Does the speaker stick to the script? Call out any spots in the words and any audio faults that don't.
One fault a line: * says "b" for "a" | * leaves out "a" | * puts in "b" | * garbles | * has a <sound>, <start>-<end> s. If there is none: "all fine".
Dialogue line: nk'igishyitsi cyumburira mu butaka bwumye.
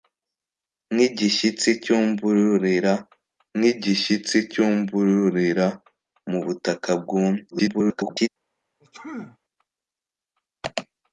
* puts in "nk'igishyitsi cyumburira"
* garbles
* has a sneeze, 8.8-9.4 s